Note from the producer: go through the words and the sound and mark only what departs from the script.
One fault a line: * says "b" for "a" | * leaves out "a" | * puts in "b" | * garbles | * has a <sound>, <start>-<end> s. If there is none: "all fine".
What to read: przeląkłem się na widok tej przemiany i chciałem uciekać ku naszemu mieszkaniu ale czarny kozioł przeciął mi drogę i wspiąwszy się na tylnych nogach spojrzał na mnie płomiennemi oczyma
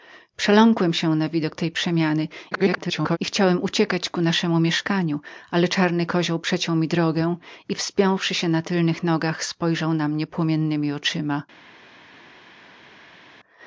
* garbles